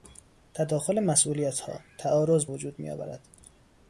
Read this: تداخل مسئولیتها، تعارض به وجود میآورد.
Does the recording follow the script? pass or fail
fail